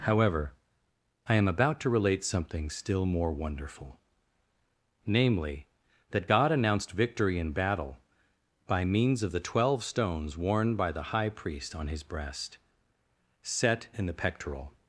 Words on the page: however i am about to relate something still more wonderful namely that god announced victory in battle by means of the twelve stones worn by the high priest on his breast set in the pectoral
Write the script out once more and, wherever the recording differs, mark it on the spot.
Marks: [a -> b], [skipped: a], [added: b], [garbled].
however i am about to relate something still more wonderful namely that god announced victory in battle by means of the twelve stones worn by the high priest on his breast set in the pectoral